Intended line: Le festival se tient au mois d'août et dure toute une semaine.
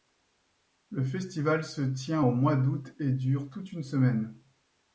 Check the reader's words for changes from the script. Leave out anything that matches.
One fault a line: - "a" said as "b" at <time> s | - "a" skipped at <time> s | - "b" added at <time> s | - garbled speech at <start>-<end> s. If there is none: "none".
none